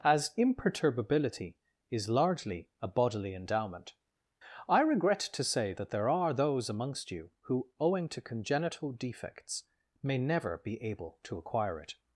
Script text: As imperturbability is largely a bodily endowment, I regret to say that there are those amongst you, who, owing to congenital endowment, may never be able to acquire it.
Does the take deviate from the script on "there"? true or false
false